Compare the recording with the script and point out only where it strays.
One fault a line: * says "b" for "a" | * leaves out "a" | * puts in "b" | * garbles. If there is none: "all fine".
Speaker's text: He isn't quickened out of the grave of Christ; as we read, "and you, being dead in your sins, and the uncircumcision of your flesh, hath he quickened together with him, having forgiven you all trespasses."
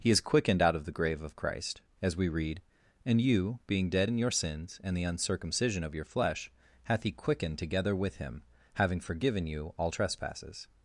* says "is" for "isn't"